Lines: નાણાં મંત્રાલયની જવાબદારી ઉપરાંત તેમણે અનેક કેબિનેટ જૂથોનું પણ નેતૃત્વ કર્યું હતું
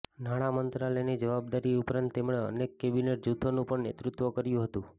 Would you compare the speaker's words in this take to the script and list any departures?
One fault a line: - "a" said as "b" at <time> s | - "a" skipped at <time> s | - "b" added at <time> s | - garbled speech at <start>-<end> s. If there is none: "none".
none